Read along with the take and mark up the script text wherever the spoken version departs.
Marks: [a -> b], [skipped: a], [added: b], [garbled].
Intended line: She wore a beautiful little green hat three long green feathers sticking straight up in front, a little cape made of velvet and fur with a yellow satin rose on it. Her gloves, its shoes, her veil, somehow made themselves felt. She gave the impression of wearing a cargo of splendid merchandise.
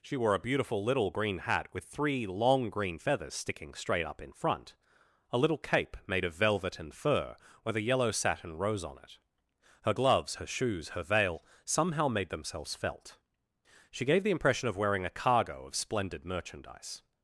She wore a beautiful little green hat [added: with] three long green feathers sticking straight up in front, a little cape made of velvet and fur with a yellow satin rose on it. Her gloves, [its -> her] shoes, her veil, somehow made themselves felt. She gave the impression of wearing a cargo of splendid merchandise.